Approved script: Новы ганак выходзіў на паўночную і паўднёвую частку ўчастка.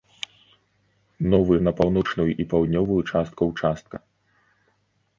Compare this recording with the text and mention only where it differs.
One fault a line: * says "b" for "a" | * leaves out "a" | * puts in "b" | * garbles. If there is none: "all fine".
* leaves out "ганак выходзіў"